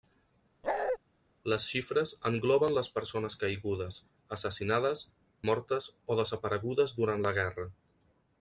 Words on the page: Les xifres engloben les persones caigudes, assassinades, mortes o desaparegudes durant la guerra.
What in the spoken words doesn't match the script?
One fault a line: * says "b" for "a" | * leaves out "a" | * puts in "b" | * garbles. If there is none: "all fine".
all fine